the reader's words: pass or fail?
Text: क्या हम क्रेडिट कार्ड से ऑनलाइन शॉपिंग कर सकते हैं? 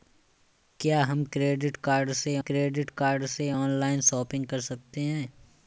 fail